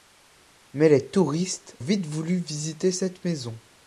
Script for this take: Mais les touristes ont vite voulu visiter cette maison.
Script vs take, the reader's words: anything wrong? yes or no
yes